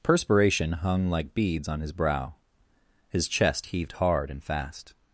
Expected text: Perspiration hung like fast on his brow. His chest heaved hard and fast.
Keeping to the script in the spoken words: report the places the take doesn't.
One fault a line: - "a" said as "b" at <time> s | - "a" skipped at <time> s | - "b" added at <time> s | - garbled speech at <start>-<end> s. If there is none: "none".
- "fast" said as "beads" at 1.4 s